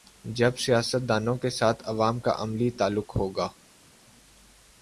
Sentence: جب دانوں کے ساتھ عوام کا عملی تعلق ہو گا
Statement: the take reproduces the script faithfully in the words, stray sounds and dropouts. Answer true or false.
false